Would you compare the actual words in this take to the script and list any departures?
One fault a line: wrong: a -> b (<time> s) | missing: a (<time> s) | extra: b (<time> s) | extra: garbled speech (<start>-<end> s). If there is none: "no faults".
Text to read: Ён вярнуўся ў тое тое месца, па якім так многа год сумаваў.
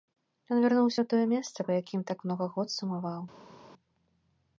missing: тое (1.3 s)